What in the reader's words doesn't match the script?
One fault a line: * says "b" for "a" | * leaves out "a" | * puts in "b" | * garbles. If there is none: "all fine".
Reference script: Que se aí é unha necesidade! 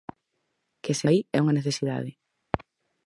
all fine